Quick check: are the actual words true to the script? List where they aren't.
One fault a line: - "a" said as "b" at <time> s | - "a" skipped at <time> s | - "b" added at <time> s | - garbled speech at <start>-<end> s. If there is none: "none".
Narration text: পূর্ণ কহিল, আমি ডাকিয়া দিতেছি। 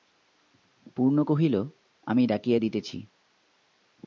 none